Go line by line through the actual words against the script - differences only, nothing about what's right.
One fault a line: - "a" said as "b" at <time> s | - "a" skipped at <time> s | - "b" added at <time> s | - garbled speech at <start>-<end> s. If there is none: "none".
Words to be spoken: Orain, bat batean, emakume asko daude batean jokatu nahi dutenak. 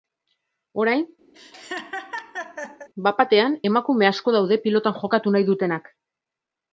- "batean" said as "pilotan" at 4.7 s